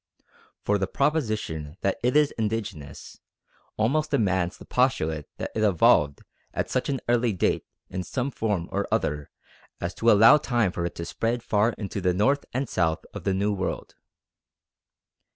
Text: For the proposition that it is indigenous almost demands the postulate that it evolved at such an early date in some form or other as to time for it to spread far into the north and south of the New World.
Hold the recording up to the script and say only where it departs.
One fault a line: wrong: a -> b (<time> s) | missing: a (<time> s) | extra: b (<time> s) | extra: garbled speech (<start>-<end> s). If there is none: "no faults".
extra: allow (10.1 s)